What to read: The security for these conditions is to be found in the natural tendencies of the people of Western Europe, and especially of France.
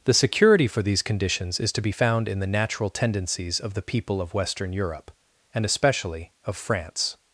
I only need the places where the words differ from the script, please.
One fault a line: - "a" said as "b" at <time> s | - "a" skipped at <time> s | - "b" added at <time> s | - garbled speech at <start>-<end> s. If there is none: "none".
none